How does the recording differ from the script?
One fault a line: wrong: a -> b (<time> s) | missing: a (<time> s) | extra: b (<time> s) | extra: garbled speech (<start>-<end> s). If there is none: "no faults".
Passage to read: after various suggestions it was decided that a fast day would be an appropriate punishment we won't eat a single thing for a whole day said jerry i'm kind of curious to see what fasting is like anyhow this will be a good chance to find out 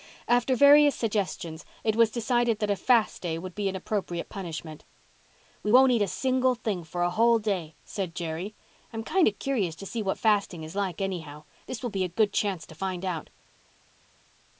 no faults